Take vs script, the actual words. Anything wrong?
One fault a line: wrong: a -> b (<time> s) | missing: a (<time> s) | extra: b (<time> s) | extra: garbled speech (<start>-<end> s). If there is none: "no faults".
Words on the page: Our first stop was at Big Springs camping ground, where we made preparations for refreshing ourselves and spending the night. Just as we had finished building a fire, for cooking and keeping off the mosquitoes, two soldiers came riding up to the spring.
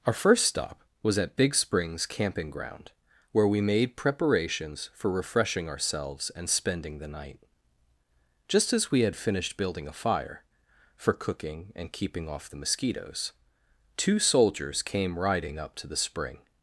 no faults